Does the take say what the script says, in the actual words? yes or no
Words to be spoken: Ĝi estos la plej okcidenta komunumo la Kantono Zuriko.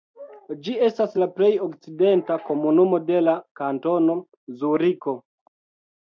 no